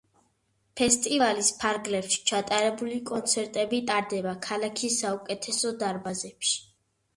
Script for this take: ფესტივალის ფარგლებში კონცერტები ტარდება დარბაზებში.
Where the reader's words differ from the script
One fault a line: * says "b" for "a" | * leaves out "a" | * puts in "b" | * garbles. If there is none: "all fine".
* puts in "ჩატარებული"
* puts in "ქალაქის საუკეთესო"